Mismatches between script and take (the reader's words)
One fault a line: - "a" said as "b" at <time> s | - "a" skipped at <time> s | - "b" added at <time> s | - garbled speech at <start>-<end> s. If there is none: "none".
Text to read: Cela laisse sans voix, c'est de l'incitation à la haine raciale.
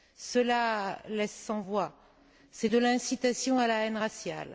none